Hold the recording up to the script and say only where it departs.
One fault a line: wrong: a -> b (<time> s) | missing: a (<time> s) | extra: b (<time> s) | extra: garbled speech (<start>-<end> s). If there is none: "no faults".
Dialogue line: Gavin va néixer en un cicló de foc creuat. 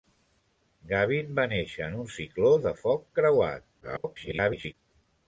extra: garbled speech (3.8-4.7 s)